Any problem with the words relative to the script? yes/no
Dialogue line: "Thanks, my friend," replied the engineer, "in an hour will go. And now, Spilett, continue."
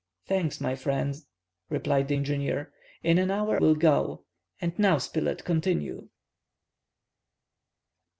no